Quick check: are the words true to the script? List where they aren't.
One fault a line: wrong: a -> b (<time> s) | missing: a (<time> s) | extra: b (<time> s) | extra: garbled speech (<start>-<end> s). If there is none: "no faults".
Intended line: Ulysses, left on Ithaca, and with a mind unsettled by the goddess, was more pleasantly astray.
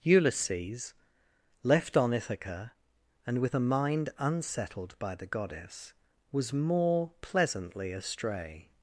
no faults